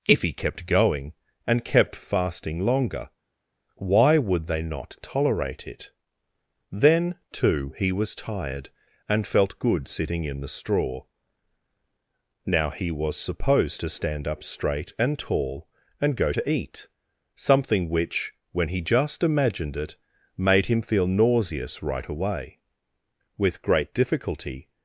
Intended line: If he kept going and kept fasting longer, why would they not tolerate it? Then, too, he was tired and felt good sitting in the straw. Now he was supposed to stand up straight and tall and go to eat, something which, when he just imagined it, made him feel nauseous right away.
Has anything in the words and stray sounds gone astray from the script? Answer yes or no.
yes